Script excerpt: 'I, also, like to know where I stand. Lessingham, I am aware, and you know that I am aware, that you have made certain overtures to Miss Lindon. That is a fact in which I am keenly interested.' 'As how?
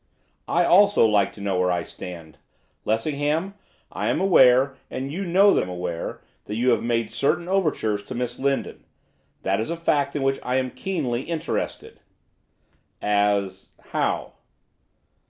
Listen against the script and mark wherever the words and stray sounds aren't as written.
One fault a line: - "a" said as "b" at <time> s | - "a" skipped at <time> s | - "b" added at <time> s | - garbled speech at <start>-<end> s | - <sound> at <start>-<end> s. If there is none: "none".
- "I" skipped at 5.6 s